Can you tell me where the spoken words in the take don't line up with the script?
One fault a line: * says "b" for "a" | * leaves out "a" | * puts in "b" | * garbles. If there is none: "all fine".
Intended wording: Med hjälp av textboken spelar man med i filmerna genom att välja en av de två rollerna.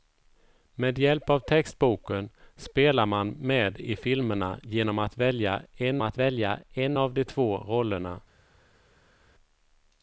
* puts in "att välja en"